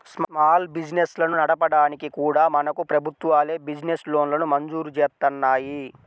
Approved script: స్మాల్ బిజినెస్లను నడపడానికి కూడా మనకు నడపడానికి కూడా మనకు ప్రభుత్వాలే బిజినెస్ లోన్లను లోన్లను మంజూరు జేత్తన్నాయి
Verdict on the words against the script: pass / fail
fail